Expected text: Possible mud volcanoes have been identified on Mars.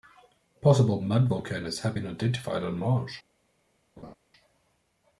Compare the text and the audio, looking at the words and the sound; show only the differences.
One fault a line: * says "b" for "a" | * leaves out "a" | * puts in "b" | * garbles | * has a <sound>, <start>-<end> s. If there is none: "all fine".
* has a laugh, 4.0-4.1 s